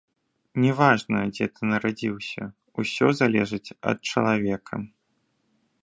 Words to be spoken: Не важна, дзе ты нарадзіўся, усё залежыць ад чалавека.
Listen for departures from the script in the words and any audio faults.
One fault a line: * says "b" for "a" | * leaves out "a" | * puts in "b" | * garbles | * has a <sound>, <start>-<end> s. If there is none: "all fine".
all fine